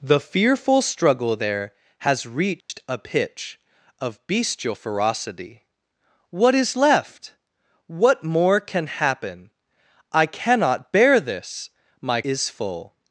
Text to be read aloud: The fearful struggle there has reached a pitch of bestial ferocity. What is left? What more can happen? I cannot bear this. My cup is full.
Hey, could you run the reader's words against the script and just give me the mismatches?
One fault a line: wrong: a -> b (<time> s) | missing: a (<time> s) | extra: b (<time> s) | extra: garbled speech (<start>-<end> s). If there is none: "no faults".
missing: cup (12.2 s)